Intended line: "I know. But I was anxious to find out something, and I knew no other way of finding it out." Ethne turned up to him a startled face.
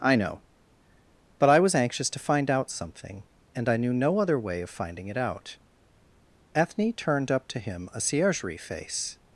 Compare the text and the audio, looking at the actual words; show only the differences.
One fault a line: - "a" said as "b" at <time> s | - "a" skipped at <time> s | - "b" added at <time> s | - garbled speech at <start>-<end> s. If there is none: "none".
- "startled" said as "ciergerie" at 8.0 s